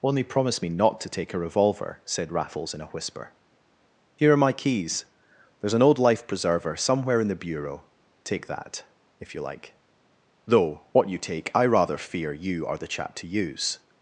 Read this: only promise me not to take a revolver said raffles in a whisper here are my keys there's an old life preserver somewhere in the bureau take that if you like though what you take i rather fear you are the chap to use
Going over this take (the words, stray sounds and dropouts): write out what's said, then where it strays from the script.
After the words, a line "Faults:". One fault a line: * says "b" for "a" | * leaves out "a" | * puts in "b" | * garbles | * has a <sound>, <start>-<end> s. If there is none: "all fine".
only promise me not to take a revolver said raffles in a whisper here are my keys there's an old life preserver somewhere in the bureau take that if you like though what you take i rather fear you are the chap to use
Faults:
all fine